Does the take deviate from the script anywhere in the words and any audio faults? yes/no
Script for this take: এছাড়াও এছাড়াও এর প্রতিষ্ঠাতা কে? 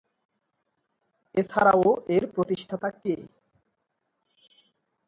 yes